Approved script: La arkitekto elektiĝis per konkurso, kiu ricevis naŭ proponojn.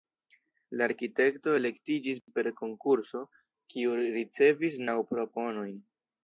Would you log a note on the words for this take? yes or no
no